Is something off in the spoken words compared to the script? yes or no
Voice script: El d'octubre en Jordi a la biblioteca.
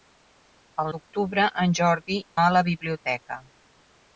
no